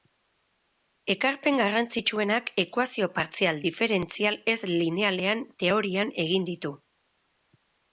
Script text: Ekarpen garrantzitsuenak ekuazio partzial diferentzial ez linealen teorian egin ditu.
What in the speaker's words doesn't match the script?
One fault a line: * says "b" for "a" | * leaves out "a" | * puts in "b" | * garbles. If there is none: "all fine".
all fine